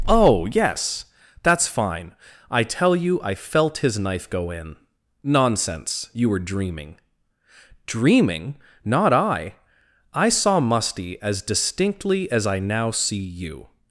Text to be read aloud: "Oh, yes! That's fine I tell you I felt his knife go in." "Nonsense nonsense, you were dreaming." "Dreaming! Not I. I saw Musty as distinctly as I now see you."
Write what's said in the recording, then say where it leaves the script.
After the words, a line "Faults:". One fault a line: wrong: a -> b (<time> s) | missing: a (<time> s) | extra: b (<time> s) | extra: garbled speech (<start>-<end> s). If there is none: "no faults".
"Oh, yes! That's fine I tell you I felt his knife go in." "Nonsense, you were dreaming." "Dreaming! Not I. I saw Musty as distinctly as I now see you."
Faults:
missing: nonsense (6.1 s)